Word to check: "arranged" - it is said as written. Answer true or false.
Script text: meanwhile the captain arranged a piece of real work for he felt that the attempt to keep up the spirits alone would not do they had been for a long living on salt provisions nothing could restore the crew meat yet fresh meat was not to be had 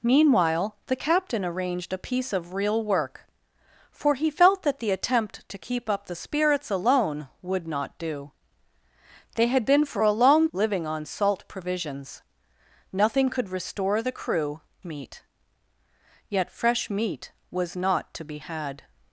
true